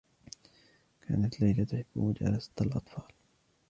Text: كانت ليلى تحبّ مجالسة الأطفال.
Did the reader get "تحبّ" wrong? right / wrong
right